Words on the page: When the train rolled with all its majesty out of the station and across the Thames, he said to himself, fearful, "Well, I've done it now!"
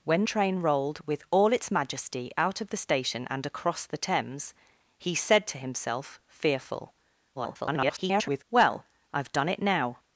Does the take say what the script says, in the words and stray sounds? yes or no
no